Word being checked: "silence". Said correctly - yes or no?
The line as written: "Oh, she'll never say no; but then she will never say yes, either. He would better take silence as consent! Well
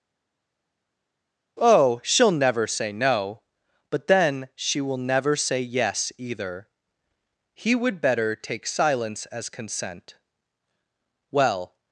yes